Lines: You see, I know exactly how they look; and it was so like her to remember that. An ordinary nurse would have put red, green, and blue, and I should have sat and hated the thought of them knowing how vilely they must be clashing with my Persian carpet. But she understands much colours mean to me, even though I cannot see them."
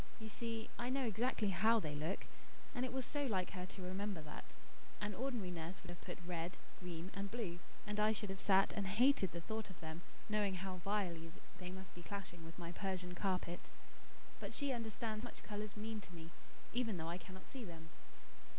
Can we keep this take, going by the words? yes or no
yes